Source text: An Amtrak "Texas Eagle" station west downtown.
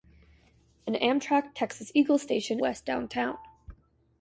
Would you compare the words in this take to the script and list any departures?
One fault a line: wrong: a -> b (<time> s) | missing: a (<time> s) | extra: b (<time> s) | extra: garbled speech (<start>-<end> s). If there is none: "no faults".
no faults